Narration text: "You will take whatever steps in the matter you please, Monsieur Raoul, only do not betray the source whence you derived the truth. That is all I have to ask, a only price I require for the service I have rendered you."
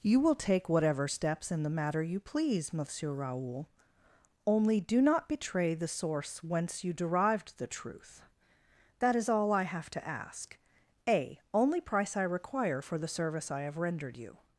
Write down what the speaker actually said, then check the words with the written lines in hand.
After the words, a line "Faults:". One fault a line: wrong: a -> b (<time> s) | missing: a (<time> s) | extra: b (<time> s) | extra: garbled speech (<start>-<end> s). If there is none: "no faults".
"You will take whatever steps in the matter you please, Monsieur Raoul, only do not betray the source whence you derived the truth. That is all I have to ask, a only price I require for the service I have rendered you."
Faults:
no faults